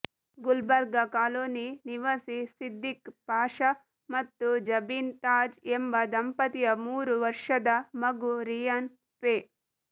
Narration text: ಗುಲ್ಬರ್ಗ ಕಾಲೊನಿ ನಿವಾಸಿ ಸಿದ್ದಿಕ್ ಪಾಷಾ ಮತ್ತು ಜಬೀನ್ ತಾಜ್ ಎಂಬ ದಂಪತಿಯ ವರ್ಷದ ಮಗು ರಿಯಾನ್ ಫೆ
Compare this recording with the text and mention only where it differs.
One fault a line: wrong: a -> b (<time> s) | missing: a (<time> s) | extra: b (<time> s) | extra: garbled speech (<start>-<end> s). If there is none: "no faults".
extra: ಮೂರು (6.9 s)